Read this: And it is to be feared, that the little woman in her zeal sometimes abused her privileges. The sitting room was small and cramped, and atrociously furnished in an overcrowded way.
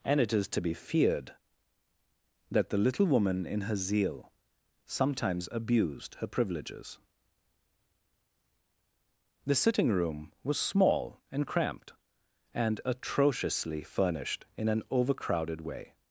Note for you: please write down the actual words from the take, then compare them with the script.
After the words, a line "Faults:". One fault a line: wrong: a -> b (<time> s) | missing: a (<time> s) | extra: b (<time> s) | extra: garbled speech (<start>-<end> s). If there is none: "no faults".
And it is to be feared, that the little woman in her zeal sometimes abused her privileges. The sitting room was small and cramped, and atrociously furnished in an overcrowded way.
Faults:
no faults